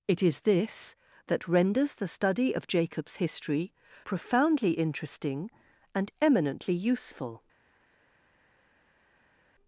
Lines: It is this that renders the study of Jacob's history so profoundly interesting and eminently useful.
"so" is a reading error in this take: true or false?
true